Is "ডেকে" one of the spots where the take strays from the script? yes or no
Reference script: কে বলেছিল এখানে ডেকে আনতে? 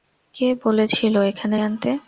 yes